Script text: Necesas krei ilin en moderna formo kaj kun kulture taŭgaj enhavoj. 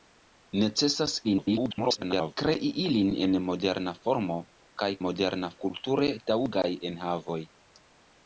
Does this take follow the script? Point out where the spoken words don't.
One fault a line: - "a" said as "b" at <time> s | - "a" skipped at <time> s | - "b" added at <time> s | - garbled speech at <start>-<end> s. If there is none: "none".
- garbled speech at 1.2-2.4 s
- "kun" said as "moderna" at 5.0 s